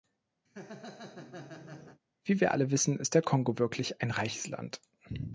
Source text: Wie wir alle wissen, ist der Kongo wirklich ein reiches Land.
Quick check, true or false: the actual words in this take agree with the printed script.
true